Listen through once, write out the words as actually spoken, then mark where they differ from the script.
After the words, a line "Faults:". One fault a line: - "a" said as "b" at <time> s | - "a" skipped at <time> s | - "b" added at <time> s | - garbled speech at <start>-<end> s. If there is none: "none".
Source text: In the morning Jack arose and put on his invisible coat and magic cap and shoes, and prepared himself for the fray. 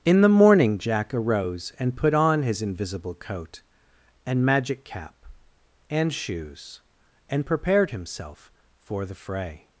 In the morning Jack arose and put on his invisible coat and magic cap and shoes, and prepared himself for the fray.
Faults:
none